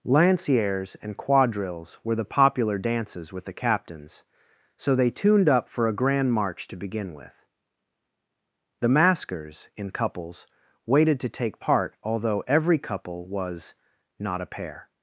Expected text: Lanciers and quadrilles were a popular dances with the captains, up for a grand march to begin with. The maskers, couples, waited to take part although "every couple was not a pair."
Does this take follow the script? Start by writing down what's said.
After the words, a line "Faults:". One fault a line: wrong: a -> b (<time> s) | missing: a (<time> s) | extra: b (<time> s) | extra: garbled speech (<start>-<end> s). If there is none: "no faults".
Lanciers and quadrilles were the popular dances with the captains, so they tuned up for a grand march to begin with. The maskers, in couples, waited to take part although "every couple was not a pair."
Faults:
wrong: a -> the (2.1 s)
extra: so they tuned (4.8 s)
extra: in (9.8 s)